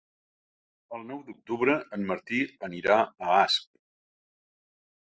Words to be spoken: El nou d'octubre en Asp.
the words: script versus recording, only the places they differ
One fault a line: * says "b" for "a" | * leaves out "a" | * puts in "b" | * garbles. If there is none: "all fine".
* puts in "Martí anirà a"